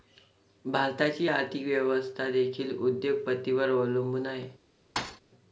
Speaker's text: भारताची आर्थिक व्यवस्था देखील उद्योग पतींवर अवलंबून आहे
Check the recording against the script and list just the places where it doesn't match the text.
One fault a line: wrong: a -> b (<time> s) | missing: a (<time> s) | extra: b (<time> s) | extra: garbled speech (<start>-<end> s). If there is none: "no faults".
no faults